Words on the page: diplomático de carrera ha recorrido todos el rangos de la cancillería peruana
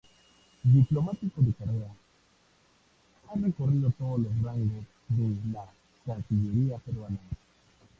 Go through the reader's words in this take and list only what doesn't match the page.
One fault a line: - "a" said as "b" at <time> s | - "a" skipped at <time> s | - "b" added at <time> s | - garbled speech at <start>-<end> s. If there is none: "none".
- "el" said as "los" at 4.2 s